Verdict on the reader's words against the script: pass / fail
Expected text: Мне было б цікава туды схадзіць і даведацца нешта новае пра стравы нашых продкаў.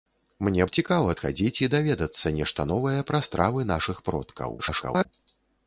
fail